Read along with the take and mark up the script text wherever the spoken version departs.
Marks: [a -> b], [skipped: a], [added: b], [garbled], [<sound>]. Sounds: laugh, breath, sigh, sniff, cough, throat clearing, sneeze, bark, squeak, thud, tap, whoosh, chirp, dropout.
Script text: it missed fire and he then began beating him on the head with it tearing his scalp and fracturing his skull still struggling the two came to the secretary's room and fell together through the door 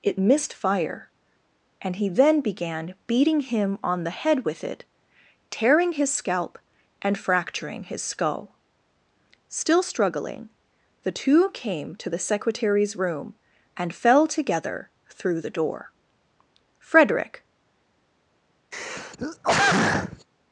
it missed fire and he then began beating him on the head with it tearing his scalp and fracturing his skull still struggling the two came to the secretary's room and fell together through the door [added: frederick] [throat clearing]